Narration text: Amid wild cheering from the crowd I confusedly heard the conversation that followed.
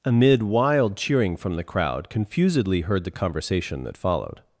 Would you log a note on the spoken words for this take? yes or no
yes